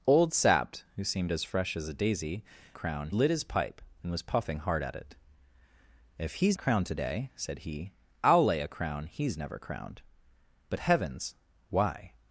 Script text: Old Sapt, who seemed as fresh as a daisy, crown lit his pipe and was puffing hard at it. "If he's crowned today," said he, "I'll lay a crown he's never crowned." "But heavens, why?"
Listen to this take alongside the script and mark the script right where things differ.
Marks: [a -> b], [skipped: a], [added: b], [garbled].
Old Sapt, who seemed as fresh as a daisy, crown lit his pipe and was puffing hard at it. "If he's crowned today," said he, "I'll lay a crown he's never crowned." "But heavens, why?"